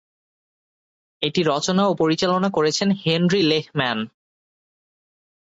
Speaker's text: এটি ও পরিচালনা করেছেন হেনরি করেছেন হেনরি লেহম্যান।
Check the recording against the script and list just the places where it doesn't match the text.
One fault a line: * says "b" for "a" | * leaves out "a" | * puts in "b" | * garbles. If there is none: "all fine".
* puts in "রচনা"
* leaves out "করেছেন হেনরি"